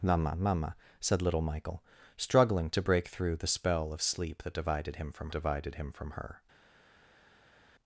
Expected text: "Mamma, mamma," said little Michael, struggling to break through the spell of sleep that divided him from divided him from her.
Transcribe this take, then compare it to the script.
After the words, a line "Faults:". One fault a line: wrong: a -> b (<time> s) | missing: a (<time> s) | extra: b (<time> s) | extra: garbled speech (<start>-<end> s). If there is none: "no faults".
"Mamma, mamma," said little Michael, struggling to break through the spell of sleep that divided him from divided him from her.
Faults:
no faults